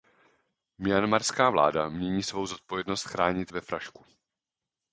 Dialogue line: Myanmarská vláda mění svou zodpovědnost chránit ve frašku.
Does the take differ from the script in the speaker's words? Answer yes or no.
no